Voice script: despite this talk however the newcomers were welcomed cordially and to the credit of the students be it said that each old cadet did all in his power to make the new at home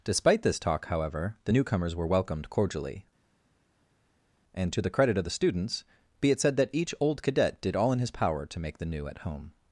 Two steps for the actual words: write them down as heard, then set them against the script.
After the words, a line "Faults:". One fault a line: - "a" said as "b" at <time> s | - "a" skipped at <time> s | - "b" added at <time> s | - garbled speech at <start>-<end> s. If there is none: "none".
despite this talk however the newcomers were welcomed cordially and to the credit of the students be it said that each old cadet did all in his power to make the new at home
Faults:
none